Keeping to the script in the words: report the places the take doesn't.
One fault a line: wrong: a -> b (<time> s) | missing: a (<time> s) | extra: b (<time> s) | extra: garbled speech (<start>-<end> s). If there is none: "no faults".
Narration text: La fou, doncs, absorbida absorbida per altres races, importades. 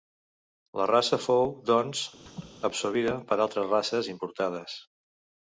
extra: raça (0.9 s)
missing: absorbida (3.2 s)